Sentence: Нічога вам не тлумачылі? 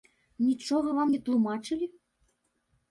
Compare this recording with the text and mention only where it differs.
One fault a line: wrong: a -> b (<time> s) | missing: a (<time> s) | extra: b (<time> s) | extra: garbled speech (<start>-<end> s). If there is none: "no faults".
no faults